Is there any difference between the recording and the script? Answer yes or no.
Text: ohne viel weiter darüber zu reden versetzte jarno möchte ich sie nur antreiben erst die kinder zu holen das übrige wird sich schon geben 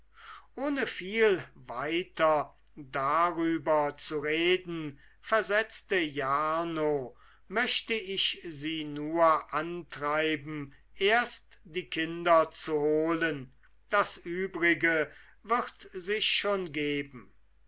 no